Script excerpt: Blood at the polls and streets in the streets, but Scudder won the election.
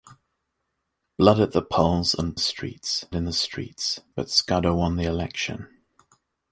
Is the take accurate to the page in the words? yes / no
yes